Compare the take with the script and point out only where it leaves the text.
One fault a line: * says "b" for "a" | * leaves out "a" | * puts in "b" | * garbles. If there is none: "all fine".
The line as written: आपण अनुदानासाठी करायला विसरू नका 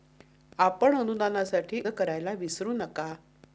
all fine